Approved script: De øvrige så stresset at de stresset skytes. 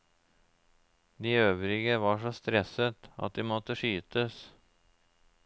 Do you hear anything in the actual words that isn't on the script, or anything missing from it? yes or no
yes